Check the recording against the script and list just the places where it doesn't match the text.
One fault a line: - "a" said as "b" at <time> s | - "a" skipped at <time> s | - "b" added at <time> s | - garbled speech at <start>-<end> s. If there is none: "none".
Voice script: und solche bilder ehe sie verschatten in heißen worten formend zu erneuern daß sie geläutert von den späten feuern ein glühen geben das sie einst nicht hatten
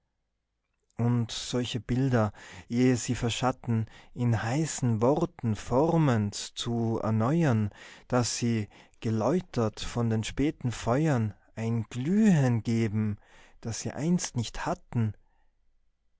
none